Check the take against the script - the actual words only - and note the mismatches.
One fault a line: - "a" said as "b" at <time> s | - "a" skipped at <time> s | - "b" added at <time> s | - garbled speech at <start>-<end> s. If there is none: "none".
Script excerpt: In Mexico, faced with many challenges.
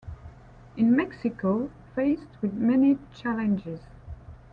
none